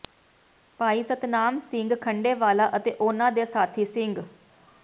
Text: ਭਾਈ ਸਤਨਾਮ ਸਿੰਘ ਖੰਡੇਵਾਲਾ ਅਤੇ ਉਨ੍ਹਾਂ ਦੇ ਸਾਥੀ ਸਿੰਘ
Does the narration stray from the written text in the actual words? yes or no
no